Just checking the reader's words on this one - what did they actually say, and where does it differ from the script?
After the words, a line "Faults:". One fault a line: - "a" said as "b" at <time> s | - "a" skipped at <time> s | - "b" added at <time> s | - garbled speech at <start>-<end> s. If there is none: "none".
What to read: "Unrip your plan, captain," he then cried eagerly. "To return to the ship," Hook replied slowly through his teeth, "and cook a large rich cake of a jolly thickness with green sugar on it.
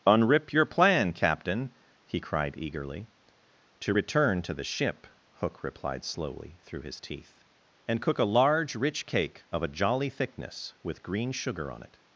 "Unrip your plan, captain," he cried eagerly. "To return to the ship," Hook replied slowly through his teeth, "and cook a large rich cake of a jolly thickness with green sugar on it.
Faults:
- "then" skipped at 2.2 s